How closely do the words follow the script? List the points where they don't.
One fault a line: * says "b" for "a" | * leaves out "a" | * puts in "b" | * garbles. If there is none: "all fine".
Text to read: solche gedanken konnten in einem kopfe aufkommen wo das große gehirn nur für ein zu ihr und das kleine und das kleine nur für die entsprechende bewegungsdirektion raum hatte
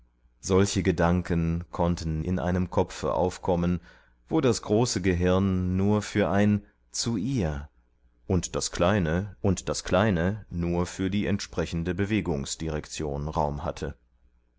all fine